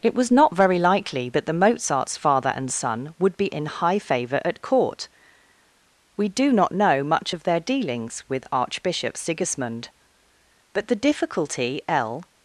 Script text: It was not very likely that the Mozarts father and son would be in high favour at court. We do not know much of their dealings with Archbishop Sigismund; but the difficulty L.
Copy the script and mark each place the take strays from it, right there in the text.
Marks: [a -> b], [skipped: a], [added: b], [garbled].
It was not very likely that the Mozarts father and son would be in high favour at court. We do not know much of their dealings with Archbishop Sigismund; but the difficulty L.